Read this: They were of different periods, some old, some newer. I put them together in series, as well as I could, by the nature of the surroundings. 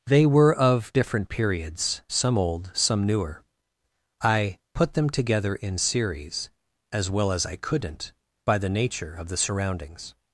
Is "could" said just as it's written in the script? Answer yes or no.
no